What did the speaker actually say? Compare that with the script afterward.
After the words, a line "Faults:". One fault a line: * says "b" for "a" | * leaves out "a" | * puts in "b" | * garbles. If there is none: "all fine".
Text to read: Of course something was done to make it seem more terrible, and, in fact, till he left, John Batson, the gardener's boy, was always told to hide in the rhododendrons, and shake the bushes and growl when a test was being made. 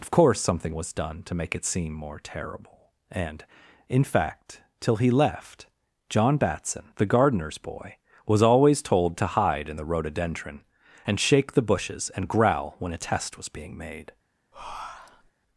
Of course something was done to make it seem more terrible, and, in fact, till he left, John Batson, the gardener's boy, was always told to hide in the rhododendron, and shake the bushes and growl when a test was being made.
Faults:
* says "rhododendron" for "rhododendrons"